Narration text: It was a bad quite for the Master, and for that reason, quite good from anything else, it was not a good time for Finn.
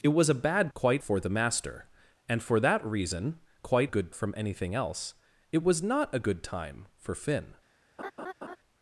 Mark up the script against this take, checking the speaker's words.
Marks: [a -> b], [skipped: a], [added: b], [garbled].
It was a bad quite for the Master, and for that reason, quite good from anything else, it was not a good time for Finn.